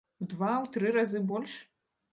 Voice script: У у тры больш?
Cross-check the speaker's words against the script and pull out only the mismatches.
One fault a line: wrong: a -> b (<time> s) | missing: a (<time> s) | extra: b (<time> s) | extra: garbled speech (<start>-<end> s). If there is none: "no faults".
extra: два (0.3 s)
extra: разы (1.0 s)